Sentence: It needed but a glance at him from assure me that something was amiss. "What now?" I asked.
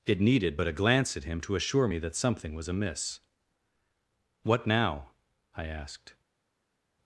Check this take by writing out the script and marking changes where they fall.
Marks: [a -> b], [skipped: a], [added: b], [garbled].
It needed but a glance at him [from -> to] assure me that something was amiss. "What now?" I asked.